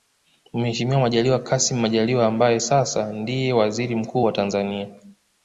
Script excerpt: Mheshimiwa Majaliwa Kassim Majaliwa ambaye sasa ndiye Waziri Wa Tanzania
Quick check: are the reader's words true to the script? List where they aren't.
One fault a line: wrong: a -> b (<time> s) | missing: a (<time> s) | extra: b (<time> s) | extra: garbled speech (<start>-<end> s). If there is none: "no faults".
extra: Mkuu (3.9 s)